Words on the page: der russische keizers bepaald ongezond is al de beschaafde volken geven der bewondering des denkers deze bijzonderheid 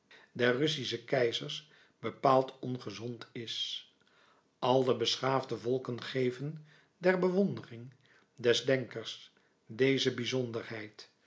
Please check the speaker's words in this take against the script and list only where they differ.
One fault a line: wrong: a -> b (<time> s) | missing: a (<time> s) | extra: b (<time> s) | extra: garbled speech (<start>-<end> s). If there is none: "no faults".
no faults